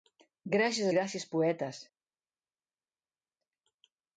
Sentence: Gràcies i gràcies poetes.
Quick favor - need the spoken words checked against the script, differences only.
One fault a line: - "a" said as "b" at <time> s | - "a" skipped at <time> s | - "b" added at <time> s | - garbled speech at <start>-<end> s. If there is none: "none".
none